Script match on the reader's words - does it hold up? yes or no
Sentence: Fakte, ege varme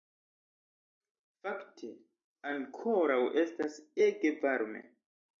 no